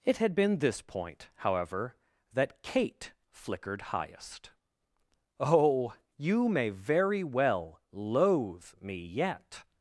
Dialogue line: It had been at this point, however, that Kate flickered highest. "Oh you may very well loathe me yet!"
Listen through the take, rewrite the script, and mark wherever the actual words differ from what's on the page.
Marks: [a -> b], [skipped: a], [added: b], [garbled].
It had been [skipped: at] this point, however, that Kate flickered highest. "Oh you may very well loathe me yet!"